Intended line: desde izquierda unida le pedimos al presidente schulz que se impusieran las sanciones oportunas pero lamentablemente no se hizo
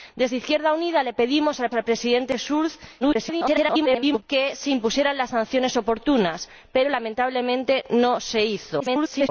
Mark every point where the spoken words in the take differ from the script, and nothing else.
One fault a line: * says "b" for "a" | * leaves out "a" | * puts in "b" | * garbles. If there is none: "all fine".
* puts in "al"
* garbles
* garbles